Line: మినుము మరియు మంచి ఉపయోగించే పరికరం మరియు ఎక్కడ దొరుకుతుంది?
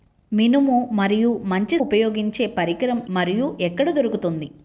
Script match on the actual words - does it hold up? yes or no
yes